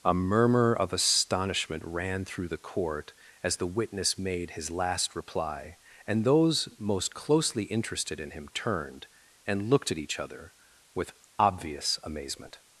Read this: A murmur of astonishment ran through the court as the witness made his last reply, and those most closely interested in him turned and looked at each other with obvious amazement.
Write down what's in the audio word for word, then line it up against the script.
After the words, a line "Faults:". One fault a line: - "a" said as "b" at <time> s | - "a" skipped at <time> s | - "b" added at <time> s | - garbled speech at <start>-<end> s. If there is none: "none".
A murmur of astonishment ran through the court as the witness made his last reply, and those most closely interested in him turned and looked at each other with obvious amazement.
Faults:
none